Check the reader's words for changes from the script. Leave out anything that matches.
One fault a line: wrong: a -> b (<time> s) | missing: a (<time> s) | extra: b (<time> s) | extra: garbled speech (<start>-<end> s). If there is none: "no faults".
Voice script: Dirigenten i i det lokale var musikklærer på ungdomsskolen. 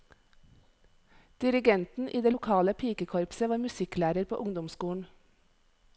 missing: i (2.2 s)
extra: pikekorpset (2.7 s)